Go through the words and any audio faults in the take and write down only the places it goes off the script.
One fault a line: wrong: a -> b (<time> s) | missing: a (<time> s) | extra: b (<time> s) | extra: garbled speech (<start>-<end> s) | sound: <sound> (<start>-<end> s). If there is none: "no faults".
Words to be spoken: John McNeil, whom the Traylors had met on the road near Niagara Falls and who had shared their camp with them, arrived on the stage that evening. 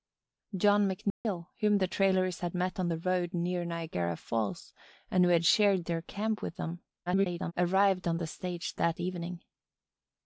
sound: dropout (1.1-1.2 s)
extra: garbled speech (7.1-7.5 s)